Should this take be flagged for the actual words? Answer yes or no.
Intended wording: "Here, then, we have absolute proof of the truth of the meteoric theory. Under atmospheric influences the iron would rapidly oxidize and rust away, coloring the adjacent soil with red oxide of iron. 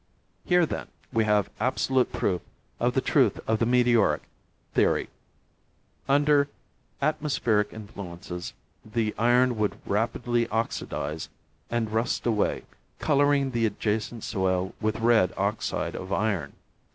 no